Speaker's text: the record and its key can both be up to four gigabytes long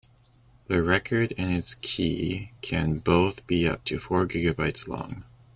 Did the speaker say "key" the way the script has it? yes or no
yes